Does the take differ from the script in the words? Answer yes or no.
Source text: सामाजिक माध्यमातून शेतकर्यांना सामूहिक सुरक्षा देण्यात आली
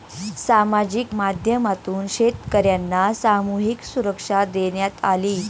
no